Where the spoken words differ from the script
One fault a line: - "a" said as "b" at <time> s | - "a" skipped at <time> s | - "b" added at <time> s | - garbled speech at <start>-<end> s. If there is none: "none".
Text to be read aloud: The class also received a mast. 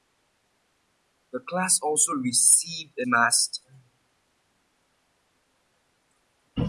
none